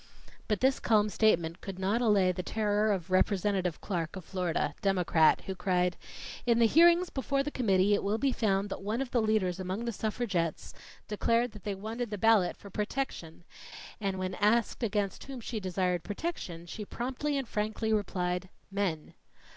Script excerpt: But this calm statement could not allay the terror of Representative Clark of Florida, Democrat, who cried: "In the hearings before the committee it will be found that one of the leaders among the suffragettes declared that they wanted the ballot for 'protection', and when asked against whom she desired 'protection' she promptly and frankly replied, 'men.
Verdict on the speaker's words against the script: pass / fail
pass